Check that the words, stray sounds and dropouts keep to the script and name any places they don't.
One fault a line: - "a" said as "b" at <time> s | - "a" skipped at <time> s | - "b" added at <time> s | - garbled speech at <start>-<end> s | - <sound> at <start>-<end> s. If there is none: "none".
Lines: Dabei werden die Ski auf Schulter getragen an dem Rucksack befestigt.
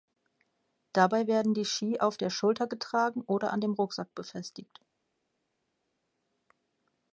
- "der" added at 2.2 s
- "oder" added at 3.3 s